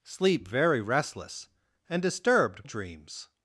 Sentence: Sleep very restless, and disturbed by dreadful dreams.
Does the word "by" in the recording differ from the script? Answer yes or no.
yes